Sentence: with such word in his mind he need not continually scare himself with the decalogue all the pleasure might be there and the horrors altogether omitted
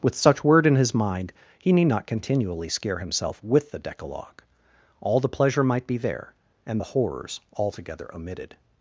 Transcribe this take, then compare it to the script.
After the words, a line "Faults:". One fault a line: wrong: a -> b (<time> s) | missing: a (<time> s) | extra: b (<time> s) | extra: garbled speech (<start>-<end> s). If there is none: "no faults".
with such word in his mind he need not continually scare himself with the decalogue all the pleasure might be there and the horrors altogether omitted
Faults:
no faults